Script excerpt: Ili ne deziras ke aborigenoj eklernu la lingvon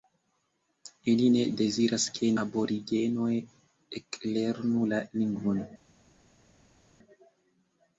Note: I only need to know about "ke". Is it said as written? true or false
true